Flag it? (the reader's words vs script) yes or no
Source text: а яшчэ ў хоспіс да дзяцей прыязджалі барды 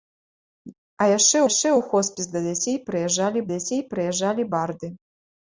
yes